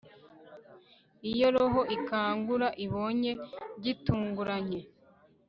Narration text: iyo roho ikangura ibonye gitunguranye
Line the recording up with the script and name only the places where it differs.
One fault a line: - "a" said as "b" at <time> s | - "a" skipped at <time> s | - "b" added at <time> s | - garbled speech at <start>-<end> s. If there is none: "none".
none